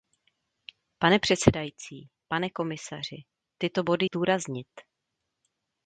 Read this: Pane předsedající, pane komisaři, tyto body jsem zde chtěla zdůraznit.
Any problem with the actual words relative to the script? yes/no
yes